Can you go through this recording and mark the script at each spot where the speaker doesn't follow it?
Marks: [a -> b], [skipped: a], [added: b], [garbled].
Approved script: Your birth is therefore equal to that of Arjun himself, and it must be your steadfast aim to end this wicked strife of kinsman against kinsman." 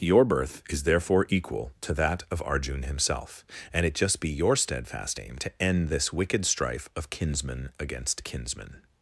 Your birth is therefore equal to that of Arjun himself, and it [must -> just] be your steadfast aim to end this wicked strife of kinsman against kinsman."